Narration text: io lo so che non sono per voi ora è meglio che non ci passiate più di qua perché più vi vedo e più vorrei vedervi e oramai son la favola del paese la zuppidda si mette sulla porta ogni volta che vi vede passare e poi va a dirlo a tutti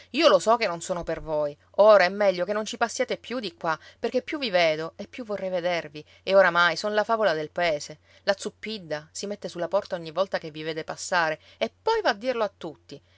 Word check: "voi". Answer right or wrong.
right